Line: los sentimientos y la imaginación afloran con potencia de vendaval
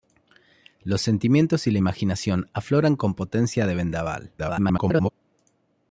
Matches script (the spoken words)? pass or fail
fail